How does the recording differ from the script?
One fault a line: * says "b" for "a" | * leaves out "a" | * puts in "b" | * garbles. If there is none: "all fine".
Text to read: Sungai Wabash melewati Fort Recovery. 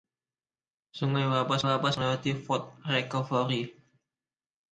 * puts in "Wabash"